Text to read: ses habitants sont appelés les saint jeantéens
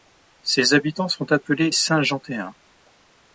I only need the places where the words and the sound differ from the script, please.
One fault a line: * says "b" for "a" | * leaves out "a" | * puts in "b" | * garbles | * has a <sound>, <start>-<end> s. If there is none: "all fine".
* leaves out "les"